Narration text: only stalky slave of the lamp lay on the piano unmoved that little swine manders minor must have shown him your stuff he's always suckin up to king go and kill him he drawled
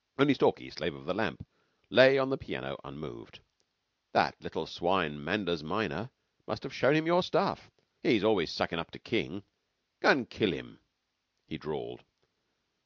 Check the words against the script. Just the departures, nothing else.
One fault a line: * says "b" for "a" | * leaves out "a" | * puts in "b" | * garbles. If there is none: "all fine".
all fine